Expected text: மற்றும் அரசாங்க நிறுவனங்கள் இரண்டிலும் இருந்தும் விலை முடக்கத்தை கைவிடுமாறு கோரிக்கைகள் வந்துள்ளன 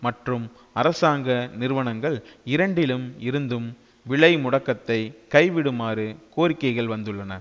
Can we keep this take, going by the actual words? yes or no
yes